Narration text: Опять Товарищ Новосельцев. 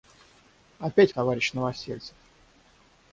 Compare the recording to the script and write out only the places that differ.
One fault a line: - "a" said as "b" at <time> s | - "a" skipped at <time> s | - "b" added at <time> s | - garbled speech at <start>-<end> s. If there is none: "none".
none